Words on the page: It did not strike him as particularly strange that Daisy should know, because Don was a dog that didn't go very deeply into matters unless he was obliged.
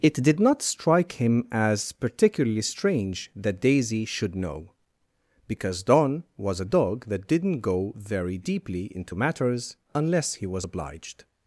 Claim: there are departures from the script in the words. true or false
false